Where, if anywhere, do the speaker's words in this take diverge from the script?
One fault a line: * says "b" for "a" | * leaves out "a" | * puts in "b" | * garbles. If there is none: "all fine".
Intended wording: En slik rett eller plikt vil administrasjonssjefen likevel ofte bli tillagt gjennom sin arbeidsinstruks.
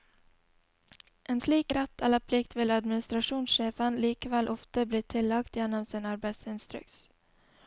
all fine